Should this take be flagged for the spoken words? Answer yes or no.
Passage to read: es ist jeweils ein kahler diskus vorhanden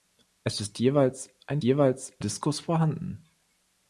yes